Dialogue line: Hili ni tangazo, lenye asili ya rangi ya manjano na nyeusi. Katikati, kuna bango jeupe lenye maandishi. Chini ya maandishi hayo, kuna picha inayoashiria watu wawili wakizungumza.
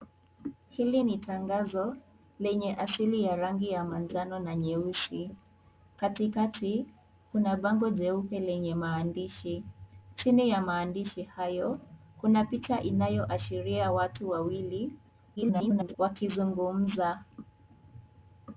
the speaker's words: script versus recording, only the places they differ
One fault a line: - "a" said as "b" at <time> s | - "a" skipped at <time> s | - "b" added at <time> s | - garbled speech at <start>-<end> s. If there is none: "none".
- garbled speech at 15.4-16.0 s